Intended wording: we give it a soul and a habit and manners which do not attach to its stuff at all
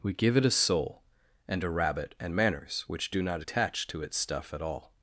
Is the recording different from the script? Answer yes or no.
yes